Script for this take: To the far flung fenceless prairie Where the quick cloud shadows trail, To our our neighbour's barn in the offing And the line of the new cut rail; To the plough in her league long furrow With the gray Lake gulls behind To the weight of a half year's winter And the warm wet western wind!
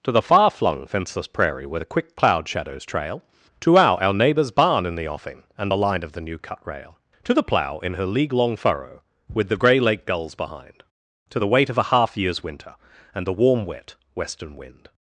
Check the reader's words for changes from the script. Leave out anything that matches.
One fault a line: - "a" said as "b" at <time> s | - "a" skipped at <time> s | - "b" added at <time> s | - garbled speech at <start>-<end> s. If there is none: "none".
none